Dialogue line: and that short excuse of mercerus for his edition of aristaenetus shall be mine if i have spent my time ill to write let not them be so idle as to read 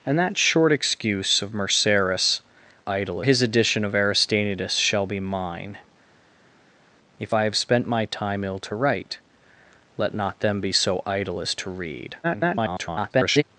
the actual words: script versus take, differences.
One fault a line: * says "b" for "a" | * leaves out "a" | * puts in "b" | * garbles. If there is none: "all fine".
* says "idle" for "for"
* garbles